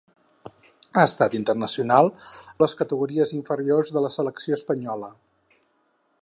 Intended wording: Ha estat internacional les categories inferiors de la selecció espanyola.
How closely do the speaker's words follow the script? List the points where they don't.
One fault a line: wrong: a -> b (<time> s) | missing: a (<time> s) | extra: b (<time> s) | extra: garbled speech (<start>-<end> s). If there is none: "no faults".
no faults